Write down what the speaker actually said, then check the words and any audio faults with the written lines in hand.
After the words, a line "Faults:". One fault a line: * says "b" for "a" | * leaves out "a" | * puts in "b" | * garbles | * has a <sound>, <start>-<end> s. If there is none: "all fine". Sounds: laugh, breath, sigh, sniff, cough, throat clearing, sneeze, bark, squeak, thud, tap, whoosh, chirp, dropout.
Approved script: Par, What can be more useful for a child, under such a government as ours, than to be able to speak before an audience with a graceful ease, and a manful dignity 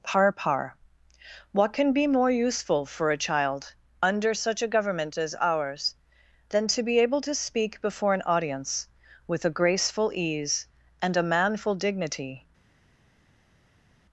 Par par, What can be more useful for a child, under such a government as ours, than to be able to speak before an audience with a graceful ease, and a manful dignity
Faults:
* puts in "par"